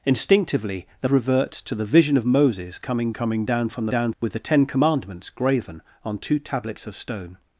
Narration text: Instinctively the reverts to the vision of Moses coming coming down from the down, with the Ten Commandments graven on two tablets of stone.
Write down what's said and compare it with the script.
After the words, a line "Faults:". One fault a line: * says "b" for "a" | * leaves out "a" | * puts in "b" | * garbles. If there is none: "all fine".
Instinctively the reverts to the vision of Moses coming coming down from the down, with the Ten Commandments graven on two tablets of stone.
Faults:
all fine